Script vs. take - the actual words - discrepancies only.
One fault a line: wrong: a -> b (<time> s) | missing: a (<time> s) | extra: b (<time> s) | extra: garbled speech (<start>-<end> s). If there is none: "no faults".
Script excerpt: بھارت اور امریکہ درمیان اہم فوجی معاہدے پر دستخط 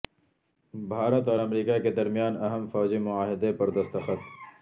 extra: کے (1.8 s)